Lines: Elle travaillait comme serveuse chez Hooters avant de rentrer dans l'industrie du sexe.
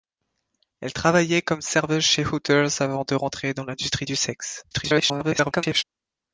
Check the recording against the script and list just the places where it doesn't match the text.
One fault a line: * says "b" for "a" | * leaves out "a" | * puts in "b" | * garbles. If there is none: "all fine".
* garbles